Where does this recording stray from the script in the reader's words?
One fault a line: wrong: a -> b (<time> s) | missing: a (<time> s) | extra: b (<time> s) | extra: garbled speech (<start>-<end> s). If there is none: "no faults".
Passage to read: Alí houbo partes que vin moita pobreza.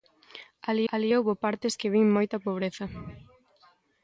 extra: alí (0.9 s)